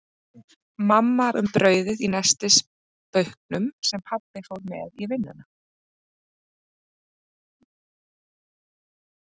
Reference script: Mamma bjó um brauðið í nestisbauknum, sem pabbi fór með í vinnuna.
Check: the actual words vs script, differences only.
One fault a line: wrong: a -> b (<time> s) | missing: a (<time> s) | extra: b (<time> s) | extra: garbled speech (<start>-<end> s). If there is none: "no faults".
missing: bjó (1.2 s)